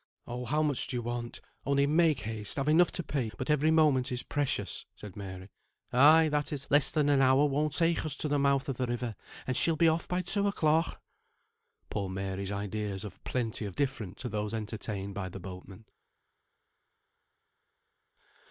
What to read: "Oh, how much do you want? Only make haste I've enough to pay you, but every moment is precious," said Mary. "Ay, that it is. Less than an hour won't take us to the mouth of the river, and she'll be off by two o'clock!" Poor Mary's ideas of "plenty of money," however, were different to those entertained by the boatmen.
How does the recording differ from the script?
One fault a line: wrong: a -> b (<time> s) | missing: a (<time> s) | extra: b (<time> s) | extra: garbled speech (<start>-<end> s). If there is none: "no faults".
missing: you (3.3 s)
missing: is (6.7 s)
missing: money however were (13.8 s)